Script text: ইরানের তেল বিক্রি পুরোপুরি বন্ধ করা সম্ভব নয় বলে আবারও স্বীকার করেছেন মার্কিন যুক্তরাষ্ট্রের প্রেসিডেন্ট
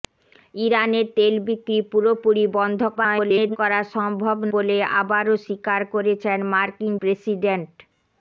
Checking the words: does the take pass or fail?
fail